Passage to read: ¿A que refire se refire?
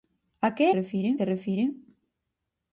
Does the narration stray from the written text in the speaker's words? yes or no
no